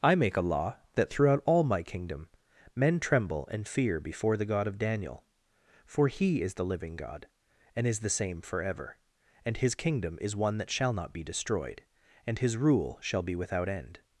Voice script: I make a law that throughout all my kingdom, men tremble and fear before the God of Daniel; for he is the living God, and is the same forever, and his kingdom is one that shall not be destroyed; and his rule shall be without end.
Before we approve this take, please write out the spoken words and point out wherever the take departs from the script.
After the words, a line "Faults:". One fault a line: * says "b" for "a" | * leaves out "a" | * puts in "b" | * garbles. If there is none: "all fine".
I make a law that throughout all my kingdom, men tremble and fear before the God of Daniel; for he is the living God, and is the same forever, and his kingdom is one that shall not be destroyed; and his rule shall be without end.
Faults:
all fine